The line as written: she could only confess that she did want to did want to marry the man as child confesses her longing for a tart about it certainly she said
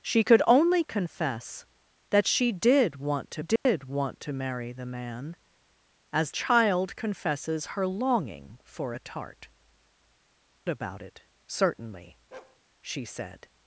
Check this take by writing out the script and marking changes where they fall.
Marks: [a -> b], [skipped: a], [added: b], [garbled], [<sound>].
she could only confess that she did want to did [dropout] want to marry the man as child confesses her longing for a tart about it certainly [bark] she said